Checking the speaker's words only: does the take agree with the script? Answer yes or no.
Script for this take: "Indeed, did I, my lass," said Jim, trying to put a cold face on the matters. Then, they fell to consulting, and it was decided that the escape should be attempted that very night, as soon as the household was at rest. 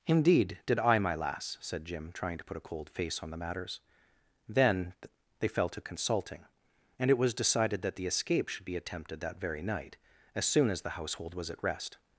yes